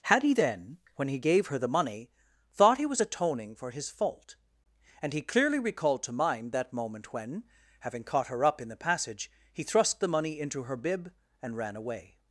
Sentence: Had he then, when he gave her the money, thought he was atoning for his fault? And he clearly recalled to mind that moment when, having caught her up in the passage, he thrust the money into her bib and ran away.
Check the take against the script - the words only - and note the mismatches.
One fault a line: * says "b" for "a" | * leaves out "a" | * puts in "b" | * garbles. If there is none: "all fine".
all fine